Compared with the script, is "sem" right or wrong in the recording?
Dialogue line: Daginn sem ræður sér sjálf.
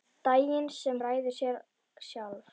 right